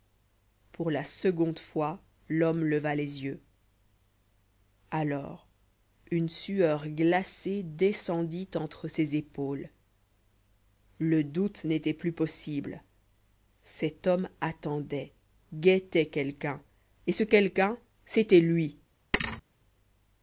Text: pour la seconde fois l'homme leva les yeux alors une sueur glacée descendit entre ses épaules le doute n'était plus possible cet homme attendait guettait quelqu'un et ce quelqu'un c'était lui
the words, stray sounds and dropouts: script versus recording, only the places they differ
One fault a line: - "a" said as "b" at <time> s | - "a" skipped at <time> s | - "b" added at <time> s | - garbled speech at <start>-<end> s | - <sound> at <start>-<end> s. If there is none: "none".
- thud at 19.1-19.4 s